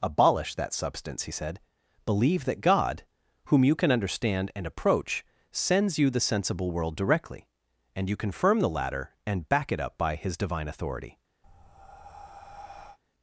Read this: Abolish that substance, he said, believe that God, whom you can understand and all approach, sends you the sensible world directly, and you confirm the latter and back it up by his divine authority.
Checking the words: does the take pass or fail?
fail